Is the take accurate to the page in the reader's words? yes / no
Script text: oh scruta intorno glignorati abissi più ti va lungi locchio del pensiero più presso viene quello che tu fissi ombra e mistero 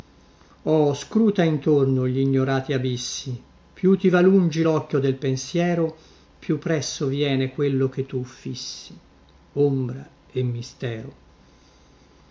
yes